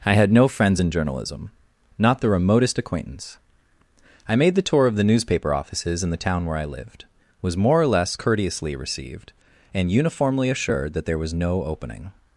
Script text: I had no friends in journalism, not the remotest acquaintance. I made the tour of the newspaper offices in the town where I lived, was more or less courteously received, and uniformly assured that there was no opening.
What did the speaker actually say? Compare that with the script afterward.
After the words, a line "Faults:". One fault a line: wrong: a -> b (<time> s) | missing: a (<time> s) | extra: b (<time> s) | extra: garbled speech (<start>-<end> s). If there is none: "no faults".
I had no friends in journalism, not the remotest acquaintance. I made the tour of the newspaper offices in the town where I lived, was more or less courteously received, and uniformly assured that there was no opening.
Faults:
no faults